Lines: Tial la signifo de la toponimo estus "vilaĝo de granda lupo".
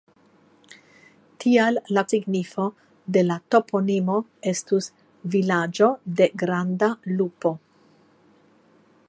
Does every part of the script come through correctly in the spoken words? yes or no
yes